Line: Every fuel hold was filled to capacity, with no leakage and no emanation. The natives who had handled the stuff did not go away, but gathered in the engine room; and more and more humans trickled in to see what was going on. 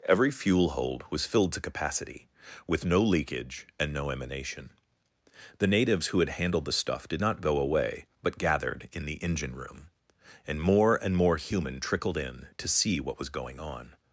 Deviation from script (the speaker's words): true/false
true